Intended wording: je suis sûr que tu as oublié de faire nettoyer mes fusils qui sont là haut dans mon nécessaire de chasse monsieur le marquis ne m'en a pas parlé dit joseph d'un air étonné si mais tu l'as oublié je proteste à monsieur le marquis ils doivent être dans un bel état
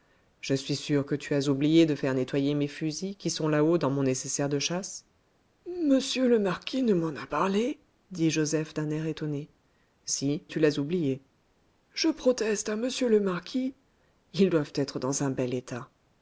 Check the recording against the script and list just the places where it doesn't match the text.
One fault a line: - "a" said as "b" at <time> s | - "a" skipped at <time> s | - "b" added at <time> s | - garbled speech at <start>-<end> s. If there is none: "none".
- "pas" skipped at 7.3 s
- "mais" skipped at 10.4 s